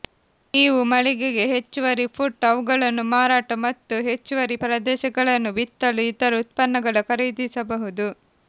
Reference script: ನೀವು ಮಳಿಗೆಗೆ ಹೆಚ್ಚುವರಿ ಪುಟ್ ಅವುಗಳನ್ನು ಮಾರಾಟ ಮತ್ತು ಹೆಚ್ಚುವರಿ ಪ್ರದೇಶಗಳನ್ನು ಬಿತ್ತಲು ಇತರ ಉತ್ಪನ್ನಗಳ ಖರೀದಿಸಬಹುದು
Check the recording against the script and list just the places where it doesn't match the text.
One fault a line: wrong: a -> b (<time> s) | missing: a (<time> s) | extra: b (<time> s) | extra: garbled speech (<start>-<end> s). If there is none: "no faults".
no faults